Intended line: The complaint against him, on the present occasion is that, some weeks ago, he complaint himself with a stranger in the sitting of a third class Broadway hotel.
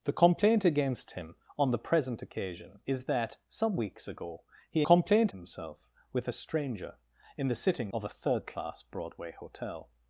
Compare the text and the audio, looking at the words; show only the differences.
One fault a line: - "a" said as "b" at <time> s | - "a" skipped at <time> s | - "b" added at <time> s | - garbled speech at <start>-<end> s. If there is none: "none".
none